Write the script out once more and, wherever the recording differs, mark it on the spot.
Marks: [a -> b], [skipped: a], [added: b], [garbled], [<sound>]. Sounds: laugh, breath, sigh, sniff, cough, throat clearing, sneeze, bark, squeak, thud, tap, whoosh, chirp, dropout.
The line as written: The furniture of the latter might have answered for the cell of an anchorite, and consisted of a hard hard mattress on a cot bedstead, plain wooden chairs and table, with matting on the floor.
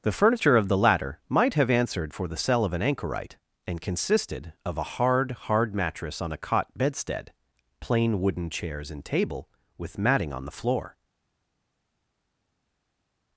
The furniture of the latter might have answered for the cell of an anchorite, and consisted of a hard hard mattress on a cot bedstead, plain wooden chairs and table, with matting on the floor.